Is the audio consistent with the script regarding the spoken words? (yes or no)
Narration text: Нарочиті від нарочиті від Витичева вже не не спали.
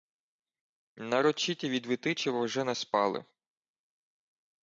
no